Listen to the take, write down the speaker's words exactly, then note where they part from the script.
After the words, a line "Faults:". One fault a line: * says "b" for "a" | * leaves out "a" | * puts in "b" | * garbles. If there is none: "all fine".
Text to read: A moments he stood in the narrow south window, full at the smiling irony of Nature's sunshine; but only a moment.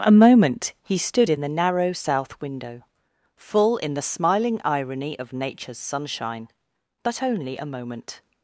A moment he stood in the narrow south window, full in the smiling irony of Nature's sunshine; but only a moment.
Faults:
* says "moment" for "moments"
* says "in" for "at"